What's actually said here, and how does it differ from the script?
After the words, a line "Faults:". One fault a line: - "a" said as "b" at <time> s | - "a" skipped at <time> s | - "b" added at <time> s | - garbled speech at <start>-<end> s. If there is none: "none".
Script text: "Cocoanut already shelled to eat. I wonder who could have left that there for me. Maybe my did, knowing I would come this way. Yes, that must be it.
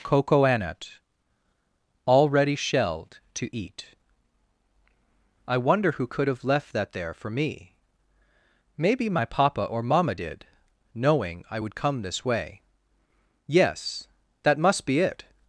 "Cocoanut already shelled to eat. I wonder who could have left that there for me. Maybe my papa or mamma did, knowing I would come this way. Yes, that must be it.
Faults:
- "papa or mamma" added at 9.3 s